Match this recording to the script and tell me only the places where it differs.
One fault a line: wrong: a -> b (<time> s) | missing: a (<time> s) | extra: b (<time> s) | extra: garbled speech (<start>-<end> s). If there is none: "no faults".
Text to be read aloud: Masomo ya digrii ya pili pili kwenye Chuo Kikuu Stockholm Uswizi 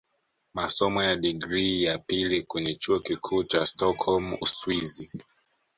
missing: pili (2.4 s)
extra: cha (3.4 s)